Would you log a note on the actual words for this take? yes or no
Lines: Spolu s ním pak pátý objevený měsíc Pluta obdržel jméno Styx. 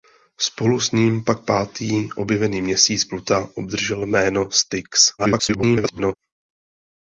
yes